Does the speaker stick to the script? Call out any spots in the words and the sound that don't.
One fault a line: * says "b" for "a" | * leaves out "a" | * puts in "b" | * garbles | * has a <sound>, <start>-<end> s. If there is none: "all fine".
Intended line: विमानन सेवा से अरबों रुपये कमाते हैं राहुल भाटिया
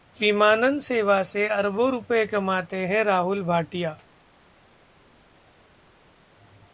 all fine